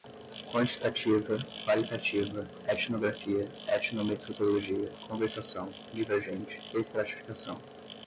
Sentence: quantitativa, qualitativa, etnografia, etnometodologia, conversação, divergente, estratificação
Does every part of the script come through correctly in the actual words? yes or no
yes